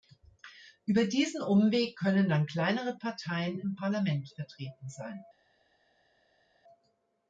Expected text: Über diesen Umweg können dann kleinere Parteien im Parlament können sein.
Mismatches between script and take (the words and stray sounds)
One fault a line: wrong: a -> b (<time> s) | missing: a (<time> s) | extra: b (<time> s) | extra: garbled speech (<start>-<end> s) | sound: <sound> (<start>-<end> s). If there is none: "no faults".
wrong: können -> vertreten (4.3 s)